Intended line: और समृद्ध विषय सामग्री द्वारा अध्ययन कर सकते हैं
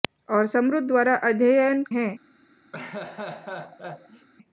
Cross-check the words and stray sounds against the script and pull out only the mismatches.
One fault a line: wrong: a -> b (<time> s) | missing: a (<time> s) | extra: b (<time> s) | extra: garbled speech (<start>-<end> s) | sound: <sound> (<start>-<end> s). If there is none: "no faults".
missing: विषय सामग्री (0.9 s)
missing: कर सकते (1.8 s)
sound: laugh (2.7-4.3 s)